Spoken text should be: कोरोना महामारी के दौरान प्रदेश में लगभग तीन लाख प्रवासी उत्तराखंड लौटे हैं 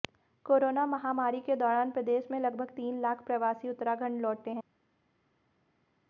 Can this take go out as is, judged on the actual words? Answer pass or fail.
pass